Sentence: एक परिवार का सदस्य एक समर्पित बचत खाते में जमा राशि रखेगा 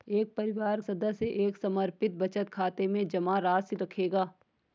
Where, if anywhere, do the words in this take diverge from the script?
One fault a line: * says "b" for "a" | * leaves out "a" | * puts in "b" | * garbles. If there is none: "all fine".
* leaves out "का"